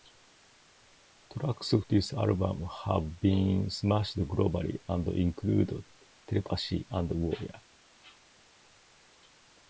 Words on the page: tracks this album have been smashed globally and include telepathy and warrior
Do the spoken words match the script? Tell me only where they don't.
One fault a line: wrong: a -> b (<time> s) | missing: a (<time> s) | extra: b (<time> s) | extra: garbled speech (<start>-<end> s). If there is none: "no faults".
no faults